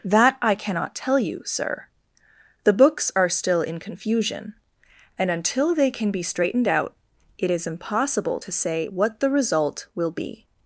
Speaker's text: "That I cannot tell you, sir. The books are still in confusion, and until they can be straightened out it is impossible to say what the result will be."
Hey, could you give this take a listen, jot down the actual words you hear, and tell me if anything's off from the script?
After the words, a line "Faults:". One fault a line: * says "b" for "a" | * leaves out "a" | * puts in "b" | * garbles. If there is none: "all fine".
"That I cannot tell you, sir. The books are still in confusion, and until they can be straightened out it is impossible to say what the result will be."
Faults:
all fine